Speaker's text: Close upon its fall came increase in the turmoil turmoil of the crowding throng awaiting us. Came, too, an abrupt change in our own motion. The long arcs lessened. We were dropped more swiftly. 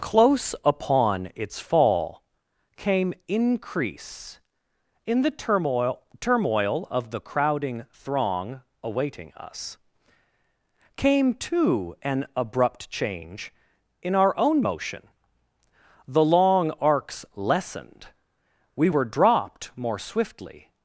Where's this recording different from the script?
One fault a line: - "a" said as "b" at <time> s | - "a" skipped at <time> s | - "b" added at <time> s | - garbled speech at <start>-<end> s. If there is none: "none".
none